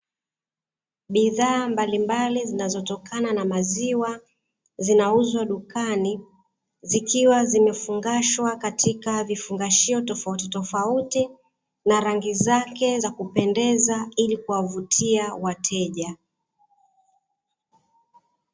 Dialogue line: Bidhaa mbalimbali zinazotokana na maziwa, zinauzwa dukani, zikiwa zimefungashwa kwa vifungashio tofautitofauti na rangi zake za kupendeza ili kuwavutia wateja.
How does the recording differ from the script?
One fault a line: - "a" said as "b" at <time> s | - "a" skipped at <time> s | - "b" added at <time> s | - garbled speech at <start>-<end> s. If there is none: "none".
- "kwa" said as "katika" at 8.5 s